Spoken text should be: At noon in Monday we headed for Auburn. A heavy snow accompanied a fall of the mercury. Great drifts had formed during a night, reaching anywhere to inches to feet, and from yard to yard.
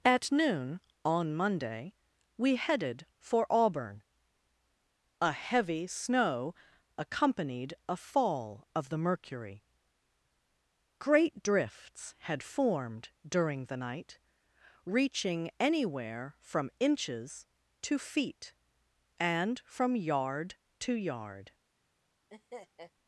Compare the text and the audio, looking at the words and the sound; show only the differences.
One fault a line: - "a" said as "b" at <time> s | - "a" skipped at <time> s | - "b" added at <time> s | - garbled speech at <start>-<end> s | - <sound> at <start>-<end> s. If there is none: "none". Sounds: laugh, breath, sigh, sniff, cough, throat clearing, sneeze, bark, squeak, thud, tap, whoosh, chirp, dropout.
- "in" said as "on" at 1.1 s
- "a" said as "the" at 13.7 s
- "to" said as "from" at 16.4 s
- laugh at 22.3-22.9 s